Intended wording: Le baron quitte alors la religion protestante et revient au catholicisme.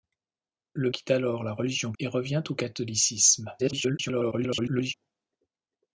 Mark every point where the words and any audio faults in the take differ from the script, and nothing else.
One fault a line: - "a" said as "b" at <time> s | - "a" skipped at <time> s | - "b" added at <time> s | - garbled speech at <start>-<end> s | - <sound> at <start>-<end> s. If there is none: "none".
- "baron" skipped at 0.9 s
- "protestante" skipped at 1.9 s
- garbled speech at 3.6-4.9 s